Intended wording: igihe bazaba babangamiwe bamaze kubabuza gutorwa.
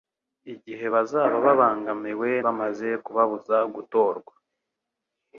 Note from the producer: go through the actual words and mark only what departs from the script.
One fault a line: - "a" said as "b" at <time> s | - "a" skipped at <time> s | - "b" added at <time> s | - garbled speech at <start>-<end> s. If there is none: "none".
none